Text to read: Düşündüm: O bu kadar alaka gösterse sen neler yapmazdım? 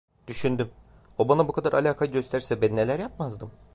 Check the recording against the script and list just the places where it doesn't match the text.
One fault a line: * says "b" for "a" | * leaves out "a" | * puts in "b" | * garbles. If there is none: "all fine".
* puts in "bana"
* says "ben" for "sen"